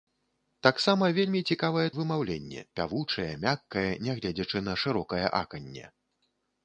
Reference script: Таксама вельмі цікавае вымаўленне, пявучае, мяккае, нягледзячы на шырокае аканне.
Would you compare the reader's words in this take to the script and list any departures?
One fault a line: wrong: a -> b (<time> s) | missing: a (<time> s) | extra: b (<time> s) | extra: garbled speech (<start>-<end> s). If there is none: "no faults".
no faults